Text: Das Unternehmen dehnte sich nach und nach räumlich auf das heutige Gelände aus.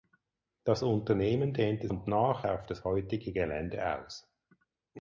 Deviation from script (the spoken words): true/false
true